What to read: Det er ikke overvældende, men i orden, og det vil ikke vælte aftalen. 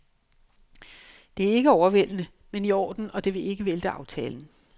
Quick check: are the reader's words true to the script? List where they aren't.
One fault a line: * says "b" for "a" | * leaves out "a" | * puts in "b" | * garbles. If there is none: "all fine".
all fine